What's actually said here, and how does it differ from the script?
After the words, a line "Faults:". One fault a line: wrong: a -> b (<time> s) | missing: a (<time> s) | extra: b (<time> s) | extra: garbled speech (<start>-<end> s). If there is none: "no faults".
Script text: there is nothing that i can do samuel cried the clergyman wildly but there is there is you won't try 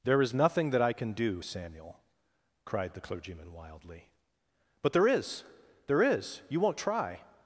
there is nothing that i can do samuel cried the clergyman wildly but there is there is you won't try
Faults:
no faults